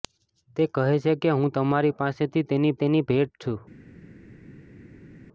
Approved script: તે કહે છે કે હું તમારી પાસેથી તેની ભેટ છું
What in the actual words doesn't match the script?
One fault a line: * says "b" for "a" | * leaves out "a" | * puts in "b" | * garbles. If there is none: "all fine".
* puts in "તેની"